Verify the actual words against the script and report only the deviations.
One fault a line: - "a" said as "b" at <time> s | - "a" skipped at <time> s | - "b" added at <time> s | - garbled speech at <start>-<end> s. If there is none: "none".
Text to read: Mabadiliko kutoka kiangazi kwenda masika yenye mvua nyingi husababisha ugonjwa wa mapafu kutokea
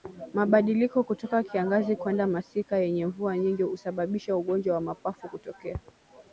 none